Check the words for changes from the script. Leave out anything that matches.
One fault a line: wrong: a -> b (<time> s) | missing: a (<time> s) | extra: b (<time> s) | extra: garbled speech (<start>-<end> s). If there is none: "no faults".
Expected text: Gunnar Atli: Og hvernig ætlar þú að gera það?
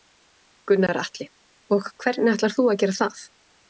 no faults